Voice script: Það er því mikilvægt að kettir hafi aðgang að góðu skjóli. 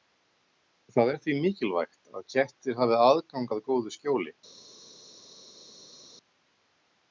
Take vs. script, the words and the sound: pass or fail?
pass